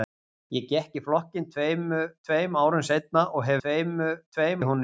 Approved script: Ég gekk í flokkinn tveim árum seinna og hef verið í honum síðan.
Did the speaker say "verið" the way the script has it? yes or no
no